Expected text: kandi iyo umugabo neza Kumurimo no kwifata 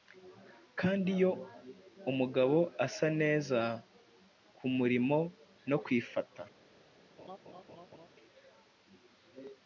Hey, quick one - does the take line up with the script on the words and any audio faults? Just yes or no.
no